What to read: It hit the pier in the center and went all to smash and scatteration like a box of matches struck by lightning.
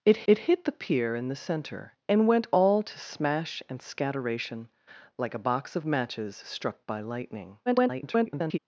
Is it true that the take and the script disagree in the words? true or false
true